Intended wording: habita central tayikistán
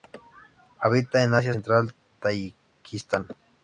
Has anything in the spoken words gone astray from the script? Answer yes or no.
yes